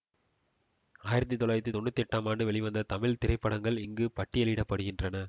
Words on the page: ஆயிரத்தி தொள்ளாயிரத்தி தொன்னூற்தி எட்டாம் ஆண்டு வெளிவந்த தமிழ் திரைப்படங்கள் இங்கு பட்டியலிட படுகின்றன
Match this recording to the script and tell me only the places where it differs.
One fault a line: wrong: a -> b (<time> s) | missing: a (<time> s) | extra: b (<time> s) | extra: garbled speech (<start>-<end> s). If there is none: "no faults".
no faults